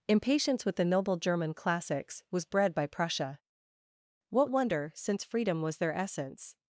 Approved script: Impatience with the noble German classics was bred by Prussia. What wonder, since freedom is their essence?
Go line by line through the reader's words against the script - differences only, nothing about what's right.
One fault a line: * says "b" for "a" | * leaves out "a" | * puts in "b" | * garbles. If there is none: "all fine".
* says "was" for "is"